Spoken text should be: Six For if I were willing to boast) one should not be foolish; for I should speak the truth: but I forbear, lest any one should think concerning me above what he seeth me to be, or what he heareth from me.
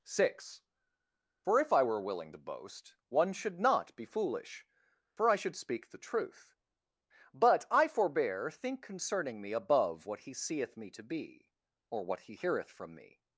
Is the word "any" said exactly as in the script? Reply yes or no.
no